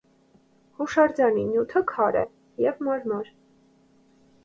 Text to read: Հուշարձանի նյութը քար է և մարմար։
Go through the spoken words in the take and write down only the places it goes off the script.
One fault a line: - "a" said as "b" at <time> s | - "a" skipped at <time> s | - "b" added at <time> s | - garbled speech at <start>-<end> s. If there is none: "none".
none